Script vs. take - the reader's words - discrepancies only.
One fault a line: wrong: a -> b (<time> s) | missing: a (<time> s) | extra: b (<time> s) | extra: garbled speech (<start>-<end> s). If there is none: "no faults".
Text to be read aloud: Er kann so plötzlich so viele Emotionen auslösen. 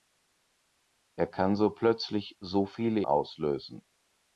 missing: Emotionen (3.0 s)